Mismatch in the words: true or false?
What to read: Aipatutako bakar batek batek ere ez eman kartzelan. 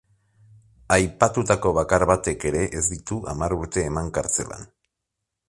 true